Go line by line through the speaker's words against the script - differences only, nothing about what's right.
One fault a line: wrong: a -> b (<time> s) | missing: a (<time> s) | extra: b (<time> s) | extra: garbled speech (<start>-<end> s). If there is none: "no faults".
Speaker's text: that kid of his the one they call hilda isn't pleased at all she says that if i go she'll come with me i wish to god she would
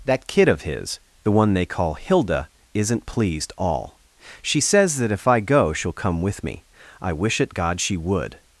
missing: at (3.5 s)
wrong: to -> at (7.4 s)